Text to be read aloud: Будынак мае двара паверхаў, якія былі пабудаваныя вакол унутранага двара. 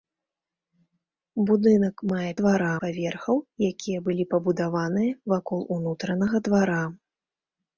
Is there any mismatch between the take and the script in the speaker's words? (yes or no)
no